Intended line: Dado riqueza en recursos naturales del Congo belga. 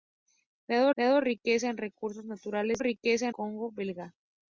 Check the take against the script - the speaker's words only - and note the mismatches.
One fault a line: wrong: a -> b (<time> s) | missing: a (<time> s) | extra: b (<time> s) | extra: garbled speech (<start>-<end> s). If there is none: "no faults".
extra: dado (1.0 s)
wrong: del -> riqueza (2.8 s)